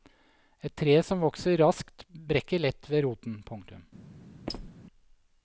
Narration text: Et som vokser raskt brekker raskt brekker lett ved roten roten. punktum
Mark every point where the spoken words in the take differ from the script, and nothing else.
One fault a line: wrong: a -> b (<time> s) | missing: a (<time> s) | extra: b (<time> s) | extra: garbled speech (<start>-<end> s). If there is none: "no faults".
extra: tre (0.8 s)
missing: raskt brekker (2.6 s)
missing: roten (3.4 s)